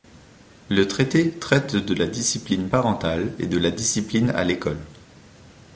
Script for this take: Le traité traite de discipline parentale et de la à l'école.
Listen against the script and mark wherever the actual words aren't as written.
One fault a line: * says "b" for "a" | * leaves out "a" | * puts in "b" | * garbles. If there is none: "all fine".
* puts in "la"
* puts in "discipline"